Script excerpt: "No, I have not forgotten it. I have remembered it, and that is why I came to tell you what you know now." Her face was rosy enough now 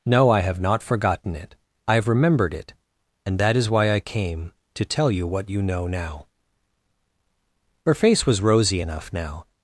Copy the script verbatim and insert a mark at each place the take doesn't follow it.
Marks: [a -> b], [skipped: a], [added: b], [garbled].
"No, I have not forgotten it. I have remembered it, and that is why I came to tell you what you know now." Her face was rosy enough now